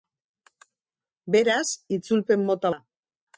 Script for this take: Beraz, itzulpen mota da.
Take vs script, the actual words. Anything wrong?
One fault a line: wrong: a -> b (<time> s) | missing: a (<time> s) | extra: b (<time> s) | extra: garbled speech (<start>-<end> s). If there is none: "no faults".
no faults